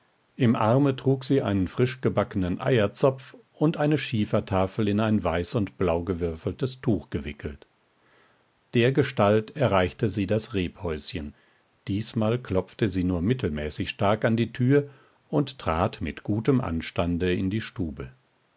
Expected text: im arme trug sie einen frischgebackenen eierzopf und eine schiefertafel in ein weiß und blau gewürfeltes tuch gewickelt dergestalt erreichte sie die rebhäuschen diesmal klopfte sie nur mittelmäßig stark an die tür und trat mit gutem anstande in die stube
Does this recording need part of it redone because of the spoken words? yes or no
yes